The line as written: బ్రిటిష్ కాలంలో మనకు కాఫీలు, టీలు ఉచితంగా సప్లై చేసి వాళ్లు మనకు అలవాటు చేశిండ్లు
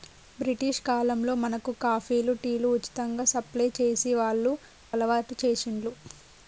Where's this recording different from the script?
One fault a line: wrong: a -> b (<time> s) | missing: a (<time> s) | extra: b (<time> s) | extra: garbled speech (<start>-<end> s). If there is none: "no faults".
missing: మనకు (4.5 s)